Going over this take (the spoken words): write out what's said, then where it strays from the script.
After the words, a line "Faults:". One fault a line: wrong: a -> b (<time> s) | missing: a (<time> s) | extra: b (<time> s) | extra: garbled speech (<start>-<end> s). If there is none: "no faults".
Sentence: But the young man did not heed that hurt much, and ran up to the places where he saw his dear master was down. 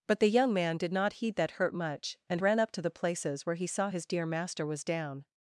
But the young man did not heed that hurt much, and ran up to the places where he saw his dear master was down.
Faults:
no faults